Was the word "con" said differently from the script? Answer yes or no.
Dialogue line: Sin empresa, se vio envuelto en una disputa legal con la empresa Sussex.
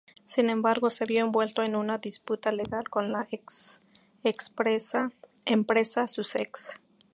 no